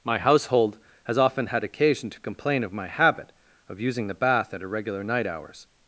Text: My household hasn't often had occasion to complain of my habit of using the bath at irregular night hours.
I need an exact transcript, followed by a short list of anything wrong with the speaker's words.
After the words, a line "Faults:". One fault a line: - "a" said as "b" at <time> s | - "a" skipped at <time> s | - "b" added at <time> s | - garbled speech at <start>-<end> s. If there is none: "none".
My household has often had occasion to complain of my habit of using the bath at irregular night hours.
Faults:
- "hasn't" said as "has" at 1.1 s